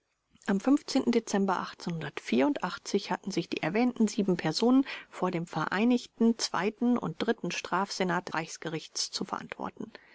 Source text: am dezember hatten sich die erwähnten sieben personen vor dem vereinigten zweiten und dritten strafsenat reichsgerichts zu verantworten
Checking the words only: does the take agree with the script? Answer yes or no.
yes